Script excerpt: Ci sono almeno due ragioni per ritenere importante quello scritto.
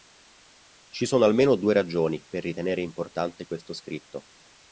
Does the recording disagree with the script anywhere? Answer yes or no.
yes